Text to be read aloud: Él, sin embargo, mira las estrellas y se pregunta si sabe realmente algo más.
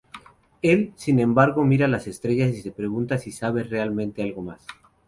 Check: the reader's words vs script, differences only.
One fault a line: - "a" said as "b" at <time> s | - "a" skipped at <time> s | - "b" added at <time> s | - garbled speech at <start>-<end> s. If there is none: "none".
none